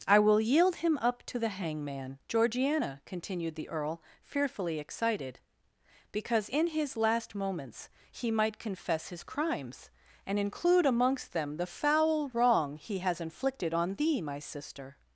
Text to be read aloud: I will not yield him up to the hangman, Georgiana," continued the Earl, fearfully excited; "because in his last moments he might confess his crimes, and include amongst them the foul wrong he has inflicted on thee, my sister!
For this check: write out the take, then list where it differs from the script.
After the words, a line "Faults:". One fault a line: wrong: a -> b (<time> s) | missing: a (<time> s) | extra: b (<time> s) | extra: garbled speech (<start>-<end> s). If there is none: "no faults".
I will yield him up to the hangman, Georgiana," continued the Earl, fearfully excited; "because in his last moments he might confess his crimes, and include amongst them the foul wrong he has inflicted on thee, my sister!
Faults:
missing: not (0.4 s)